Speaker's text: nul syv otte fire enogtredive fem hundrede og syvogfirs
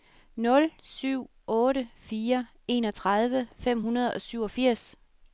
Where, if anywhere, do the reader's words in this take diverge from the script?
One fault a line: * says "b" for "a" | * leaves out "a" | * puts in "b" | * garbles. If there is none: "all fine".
all fine